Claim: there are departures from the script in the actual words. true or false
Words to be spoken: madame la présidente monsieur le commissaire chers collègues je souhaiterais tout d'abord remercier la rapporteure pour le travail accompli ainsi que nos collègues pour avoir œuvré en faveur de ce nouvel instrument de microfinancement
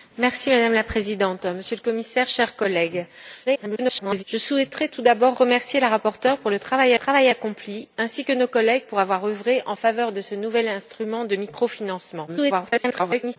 true